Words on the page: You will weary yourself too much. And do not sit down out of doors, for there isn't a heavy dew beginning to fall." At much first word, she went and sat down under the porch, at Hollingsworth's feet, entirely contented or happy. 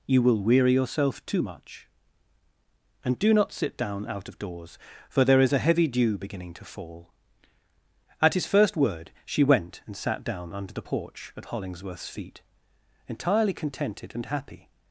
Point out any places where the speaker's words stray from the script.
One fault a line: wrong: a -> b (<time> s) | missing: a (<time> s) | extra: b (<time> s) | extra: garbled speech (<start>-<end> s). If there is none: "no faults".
wrong: isn't -> is (5.4 s)
wrong: much -> his (8.3 s)
wrong: or -> and (14.1 s)